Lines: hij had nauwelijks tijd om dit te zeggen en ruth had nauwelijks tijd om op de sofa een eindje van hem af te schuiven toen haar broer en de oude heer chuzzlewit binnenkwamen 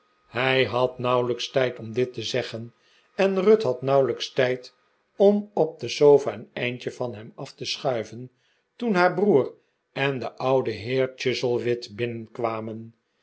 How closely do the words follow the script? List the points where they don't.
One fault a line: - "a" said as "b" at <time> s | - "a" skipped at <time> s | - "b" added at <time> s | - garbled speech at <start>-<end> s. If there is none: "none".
none